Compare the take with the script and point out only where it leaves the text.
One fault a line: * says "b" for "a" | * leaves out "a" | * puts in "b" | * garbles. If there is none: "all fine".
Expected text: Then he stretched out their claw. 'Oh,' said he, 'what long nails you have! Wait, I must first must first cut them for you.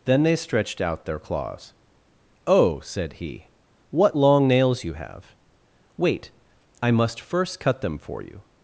* says "they" for "he"
* says "claws" for "claw"
* leaves out "must first"